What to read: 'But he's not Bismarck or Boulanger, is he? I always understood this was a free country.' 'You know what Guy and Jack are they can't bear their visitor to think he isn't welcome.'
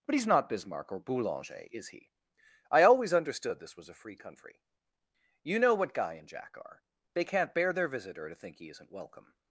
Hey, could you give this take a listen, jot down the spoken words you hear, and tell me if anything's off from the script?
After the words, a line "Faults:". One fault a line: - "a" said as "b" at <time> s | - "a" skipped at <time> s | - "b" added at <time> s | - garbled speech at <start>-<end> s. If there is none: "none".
'But he's not Bismarck or Boulanger, is he? I always understood this was a free country.' 'You know what Guy and Jack are they can't bear their visitor to think he isn't welcome.'
Faults:
none